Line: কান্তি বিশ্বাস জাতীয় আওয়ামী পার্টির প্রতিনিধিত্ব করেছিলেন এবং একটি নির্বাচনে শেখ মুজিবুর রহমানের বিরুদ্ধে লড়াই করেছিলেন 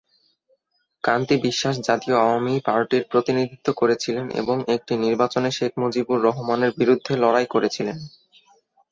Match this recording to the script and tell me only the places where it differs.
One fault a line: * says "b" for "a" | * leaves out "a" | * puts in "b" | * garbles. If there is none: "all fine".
all fine